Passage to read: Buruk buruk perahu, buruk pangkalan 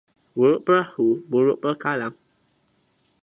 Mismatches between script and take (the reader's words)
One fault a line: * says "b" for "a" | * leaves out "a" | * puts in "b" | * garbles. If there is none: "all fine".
* leaves out "buruk"